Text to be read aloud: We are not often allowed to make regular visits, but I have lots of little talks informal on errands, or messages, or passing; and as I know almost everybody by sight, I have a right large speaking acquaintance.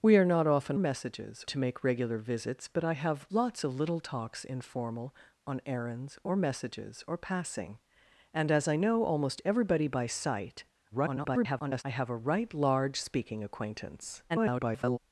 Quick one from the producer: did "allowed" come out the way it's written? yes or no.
no